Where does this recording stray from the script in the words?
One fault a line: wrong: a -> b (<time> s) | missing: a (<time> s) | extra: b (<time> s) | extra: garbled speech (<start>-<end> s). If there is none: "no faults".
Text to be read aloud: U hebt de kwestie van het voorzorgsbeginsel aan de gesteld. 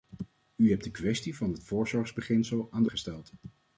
no faults